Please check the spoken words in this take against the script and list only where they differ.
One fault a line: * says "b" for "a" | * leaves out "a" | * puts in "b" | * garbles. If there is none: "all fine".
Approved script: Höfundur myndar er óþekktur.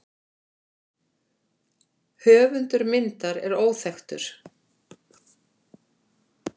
all fine